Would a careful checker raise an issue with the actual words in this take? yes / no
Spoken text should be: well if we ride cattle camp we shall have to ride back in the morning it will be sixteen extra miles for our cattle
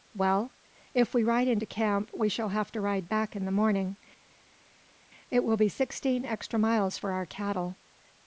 yes